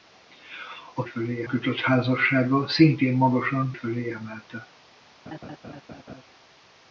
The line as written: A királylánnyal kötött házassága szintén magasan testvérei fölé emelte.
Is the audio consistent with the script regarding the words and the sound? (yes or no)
no